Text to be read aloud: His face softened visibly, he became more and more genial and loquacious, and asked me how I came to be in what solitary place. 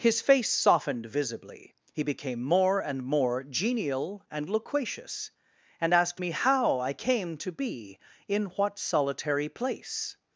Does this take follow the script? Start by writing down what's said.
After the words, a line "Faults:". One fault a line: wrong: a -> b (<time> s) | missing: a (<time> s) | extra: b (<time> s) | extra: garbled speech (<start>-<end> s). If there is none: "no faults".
His face softened visibly, he became more and more genial and loquacious, and asked me how I came to be in what solitary place.
Faults:
no faults